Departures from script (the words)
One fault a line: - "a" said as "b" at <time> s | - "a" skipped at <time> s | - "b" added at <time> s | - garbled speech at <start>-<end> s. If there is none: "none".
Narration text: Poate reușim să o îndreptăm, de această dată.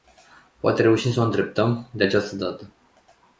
none